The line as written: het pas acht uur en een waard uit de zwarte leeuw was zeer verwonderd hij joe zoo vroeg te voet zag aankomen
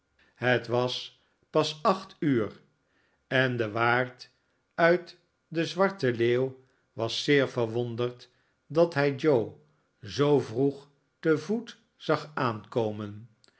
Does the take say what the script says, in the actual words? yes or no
no